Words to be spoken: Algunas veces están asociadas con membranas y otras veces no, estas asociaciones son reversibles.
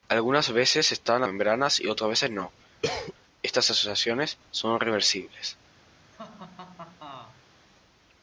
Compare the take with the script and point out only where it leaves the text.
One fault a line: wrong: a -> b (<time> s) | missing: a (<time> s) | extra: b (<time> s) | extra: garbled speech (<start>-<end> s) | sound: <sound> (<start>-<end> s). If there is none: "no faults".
missing: asociadas con (1.2 s)
sound: cough (2.8-3.1 s)
sound: laugh (6.1-7.4 s)